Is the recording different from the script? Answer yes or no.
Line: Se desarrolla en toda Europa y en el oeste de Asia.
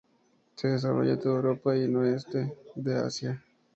no